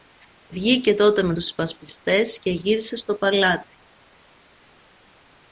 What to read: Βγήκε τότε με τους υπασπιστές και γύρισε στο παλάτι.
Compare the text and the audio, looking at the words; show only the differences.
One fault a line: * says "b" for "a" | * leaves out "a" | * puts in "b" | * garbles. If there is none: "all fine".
all fine